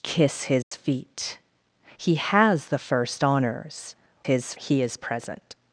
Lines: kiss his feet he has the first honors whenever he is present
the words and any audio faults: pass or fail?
fail